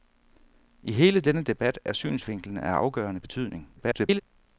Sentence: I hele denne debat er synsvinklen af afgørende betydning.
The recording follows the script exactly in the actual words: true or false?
false